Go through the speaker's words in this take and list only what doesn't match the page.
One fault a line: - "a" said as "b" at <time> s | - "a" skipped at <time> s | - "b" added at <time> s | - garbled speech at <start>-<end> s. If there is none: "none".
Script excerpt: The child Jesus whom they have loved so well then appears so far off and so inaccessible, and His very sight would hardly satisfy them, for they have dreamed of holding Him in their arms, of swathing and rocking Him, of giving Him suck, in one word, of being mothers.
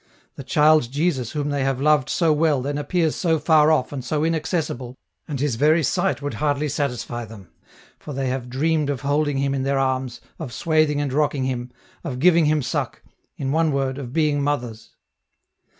none